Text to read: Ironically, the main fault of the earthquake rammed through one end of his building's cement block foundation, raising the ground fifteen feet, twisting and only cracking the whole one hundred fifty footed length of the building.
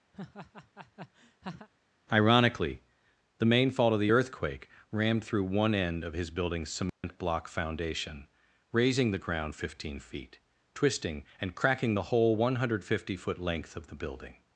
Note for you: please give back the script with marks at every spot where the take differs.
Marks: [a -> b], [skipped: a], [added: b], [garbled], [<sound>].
[laugh] Ironically, the main fault of the earthquake rammed through one end of his building's cement [dropout] block foundation, raising the ground fifteen feet, twisting and [skipped: only] cracking the whole one hundred fifty [footed -> foot] length of the building.